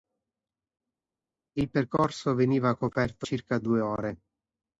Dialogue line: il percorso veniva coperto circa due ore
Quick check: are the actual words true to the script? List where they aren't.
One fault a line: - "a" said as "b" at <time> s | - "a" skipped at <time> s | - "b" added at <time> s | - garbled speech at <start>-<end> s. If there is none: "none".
none